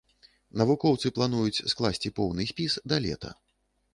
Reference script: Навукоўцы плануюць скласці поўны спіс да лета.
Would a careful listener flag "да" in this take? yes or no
no